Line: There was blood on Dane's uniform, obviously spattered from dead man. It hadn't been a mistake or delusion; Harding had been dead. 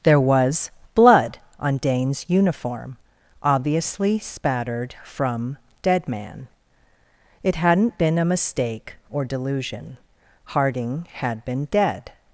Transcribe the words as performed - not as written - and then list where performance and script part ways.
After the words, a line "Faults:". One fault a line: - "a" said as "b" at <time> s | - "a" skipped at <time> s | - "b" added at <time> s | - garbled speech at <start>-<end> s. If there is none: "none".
There was blood on Dane's uniform, obviously spattered from dead man. It hadn't been a mistake or delusion; Harding had been dead.
Faults:
none